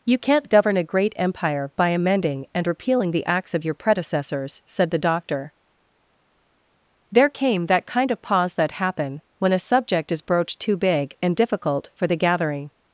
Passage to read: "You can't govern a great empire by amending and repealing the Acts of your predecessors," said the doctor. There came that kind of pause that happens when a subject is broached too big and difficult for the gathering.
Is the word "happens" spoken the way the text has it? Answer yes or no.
no